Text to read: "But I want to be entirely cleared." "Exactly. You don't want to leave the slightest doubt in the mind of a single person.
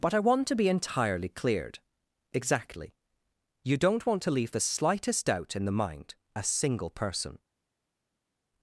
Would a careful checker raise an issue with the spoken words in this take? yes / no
yes